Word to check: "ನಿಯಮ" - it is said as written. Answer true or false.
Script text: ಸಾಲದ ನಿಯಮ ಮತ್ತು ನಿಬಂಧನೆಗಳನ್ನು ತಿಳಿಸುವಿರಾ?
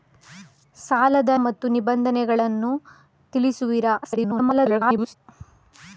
false